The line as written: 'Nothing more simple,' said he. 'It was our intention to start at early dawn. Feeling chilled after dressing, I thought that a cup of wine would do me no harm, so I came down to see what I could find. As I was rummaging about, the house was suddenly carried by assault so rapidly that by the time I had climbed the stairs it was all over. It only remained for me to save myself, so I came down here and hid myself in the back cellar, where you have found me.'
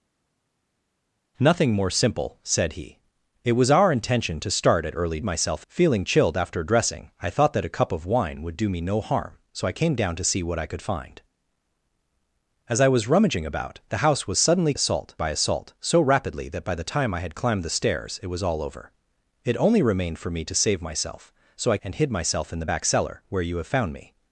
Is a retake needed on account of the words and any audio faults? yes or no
yes